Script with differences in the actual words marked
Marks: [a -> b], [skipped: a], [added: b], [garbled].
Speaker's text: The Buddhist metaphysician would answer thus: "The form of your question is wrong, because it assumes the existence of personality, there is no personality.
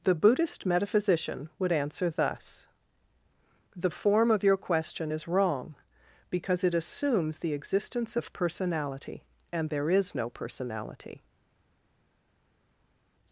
The Buddhist metaphysician would answer thus: "The form of your question is wrong, because it assumes the existence of personality, [added: and] there is no personality.